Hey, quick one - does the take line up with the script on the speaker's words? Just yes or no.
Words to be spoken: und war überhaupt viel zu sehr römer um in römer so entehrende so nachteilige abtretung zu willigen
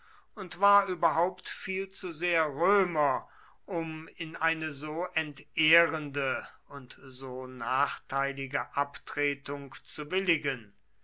no